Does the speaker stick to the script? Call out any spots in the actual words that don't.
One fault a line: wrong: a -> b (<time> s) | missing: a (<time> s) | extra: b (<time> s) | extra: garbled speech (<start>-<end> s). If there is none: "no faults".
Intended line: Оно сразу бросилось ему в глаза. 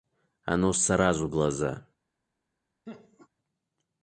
missing: бросилось ему в (1.3 s)